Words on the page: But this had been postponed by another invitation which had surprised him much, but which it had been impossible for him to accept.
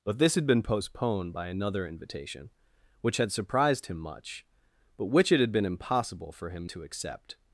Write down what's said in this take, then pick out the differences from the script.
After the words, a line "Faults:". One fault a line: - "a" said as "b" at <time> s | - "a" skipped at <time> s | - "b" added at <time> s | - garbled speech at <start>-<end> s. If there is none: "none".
But this had been postponed by another invitation which had surprised him much, but which it had been impossible for him to accept.
Faults:
none